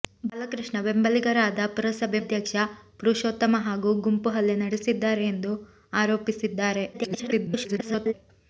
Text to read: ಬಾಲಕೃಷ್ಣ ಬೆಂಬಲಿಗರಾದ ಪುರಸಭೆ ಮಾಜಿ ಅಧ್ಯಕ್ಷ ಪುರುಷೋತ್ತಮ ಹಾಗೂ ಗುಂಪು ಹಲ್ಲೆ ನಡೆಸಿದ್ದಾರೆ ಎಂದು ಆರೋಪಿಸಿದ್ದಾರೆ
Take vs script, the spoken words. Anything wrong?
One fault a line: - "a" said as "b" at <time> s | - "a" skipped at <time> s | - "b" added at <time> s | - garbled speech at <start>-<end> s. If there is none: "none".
- "ಮಾಜಿ" skipped at 2.2 s
- garbled speech at 6.9-8.1 s